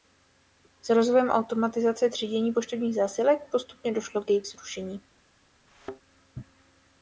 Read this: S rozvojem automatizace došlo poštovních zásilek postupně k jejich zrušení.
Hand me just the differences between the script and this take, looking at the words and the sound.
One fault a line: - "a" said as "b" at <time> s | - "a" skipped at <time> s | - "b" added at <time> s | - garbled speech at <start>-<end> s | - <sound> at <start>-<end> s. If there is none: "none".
- "došlo" said as "třídění" at 2.1 s
- "došlo" added at 3.9 s
- thud at 5.7-6.0 s